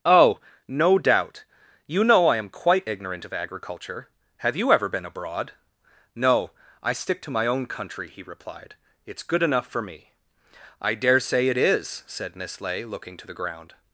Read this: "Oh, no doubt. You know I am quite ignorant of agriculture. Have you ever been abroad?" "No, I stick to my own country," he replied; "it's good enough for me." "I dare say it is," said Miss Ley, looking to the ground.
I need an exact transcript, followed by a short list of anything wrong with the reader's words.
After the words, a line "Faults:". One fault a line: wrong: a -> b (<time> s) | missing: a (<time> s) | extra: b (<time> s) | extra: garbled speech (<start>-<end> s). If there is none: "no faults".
"Oh, no doubt. You know I am quite ignorant of agriculture. Have you ever been abroad?" "No, I stick to my own country," he replied; "it's good enough for me." "I dare say it is," said Miss Ley, looking to the ground.
Faults:
no faults